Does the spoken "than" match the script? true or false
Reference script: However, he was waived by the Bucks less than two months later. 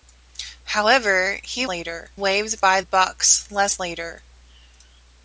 false